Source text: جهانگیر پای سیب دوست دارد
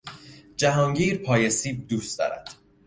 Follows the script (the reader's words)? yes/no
yes